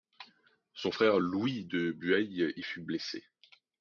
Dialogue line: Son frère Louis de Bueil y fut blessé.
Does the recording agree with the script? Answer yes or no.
yes